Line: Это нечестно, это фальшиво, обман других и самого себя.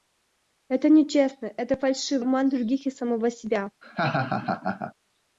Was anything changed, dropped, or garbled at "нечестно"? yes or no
no